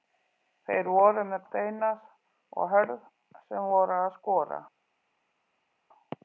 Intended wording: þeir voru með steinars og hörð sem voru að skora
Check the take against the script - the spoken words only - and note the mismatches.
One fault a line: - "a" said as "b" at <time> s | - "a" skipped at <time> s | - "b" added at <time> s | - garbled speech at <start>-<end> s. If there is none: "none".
none